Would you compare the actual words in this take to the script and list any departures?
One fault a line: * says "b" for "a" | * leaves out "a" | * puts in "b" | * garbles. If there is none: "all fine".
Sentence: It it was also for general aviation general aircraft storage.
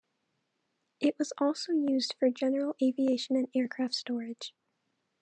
* leaves out "it"
* puts in "used"
* says "and" for "general"